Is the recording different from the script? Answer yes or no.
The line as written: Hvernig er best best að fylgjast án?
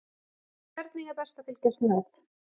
yes